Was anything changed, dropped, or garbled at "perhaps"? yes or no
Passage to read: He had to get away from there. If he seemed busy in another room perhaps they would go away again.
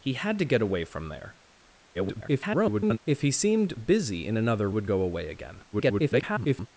yes